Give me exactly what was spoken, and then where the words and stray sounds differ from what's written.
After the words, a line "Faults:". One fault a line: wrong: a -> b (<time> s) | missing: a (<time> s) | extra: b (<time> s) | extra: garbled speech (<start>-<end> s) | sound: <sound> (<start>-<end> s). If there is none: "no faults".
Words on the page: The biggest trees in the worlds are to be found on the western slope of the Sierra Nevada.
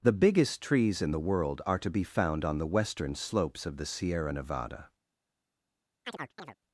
The biggest trees in the world are to be found on the western slopes of the Sierra Nevada.
Faults:
wrong: worlds -> world (1.2 s)
wrong: slope -> slopes (3.2 s)
sound: chirp (6.1-6.6 s)